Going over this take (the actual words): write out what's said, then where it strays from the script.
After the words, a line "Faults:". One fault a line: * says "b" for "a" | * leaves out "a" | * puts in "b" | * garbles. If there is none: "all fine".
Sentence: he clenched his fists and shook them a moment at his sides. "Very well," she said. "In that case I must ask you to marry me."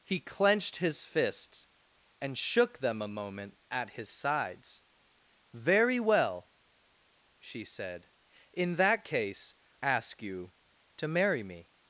he clenched his fists and shook them a moment at his sides. "Very well," she said. "In that case ask you to marry me."
Faults:
* leaves out "I must"